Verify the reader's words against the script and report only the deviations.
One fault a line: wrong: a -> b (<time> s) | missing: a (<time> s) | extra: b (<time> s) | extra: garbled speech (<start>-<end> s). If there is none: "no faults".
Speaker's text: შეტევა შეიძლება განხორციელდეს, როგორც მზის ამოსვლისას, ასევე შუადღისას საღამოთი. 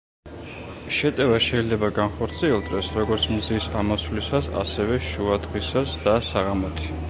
extra: და (6.1 s)